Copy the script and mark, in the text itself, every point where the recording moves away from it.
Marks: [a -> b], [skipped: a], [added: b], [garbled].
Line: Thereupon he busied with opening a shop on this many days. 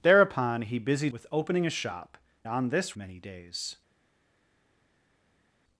Thereupon he busied with opening a shop on this many days.